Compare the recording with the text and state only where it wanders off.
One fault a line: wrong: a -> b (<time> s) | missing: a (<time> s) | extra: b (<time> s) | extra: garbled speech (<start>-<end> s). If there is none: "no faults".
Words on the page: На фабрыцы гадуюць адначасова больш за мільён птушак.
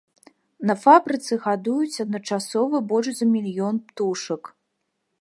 no faults